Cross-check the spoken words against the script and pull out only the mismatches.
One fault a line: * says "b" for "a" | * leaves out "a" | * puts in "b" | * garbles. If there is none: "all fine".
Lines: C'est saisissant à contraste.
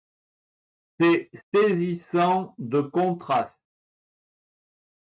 * says "de" for "à"